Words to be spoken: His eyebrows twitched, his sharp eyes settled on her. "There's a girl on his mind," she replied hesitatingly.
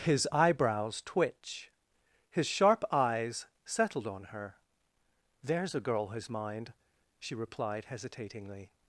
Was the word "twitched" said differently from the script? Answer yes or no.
yes